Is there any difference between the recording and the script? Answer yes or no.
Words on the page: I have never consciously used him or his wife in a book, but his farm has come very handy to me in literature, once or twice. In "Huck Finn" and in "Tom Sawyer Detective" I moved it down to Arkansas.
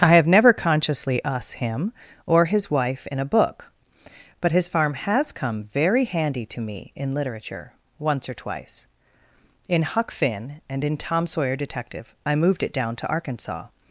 yes